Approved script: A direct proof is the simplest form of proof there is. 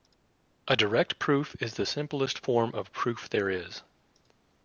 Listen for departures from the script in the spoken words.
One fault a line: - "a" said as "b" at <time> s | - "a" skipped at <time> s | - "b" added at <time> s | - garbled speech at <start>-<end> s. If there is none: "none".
none